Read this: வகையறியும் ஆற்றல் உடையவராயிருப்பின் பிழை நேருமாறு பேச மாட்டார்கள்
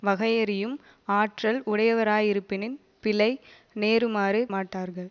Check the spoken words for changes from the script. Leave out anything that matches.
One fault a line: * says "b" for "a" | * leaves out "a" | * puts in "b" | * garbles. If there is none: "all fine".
* leaves out "பேச"